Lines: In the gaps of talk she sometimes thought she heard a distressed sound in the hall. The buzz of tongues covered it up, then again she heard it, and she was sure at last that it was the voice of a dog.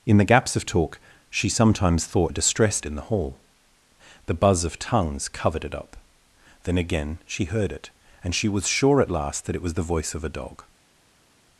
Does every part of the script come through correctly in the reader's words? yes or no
no